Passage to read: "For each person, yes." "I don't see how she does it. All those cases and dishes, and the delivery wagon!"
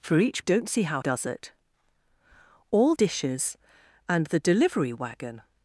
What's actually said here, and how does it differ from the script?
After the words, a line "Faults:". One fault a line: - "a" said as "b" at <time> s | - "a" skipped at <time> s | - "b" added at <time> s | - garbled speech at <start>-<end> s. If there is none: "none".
"For each don't see how does it. All dishes, and the delivery wagon!"
Faults:
- "person yes I" skipped at 0.4 s
- "she" skipped at 1.0 s
- "those cases and" skipped at 2.9 s